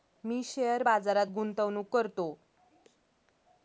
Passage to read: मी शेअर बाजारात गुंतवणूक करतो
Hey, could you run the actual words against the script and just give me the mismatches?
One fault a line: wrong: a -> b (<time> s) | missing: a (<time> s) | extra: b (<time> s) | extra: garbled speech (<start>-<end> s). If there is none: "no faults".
no faults